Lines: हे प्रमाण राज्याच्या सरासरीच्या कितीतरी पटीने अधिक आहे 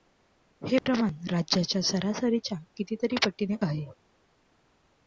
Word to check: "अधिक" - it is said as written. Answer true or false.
false